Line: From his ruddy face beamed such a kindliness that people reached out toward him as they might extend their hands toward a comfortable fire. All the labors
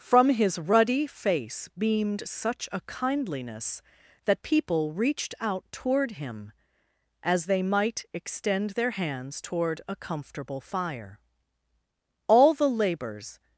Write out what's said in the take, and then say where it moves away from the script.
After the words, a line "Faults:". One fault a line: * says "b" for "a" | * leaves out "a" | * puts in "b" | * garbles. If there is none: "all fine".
From his ruddy face beamed such a kindliness that people reached out toward him as they might extend their hands toward a comfortable fire. All the labors
Faults:
all fine